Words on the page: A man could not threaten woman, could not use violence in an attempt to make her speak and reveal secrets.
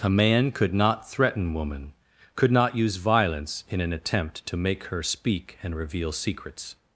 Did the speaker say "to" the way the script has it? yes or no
yes